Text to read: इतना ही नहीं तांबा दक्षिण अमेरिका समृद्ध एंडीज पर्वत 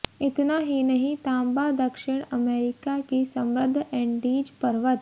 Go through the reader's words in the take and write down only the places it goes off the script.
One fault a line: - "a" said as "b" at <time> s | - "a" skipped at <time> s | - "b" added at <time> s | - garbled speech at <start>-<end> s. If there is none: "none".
- "की" added at 3.1 s